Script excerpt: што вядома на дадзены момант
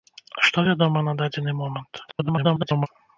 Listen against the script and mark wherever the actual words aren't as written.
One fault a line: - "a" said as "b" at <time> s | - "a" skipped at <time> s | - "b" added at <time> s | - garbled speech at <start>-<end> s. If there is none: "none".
- garbled speech at 2.1-2.9 s